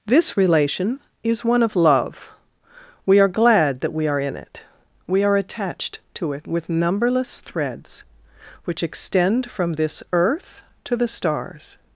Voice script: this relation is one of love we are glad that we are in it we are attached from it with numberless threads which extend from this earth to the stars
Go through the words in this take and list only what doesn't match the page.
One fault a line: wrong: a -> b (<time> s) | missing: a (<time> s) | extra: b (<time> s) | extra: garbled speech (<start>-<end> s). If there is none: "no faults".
wrong: from -> to (6.2 s)